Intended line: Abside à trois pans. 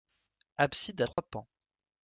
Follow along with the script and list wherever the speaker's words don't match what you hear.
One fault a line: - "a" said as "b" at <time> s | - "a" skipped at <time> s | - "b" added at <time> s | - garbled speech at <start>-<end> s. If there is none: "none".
none